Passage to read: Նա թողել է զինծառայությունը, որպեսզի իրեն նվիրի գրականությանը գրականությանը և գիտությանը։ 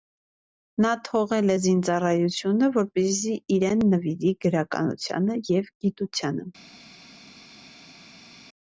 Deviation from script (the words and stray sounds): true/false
true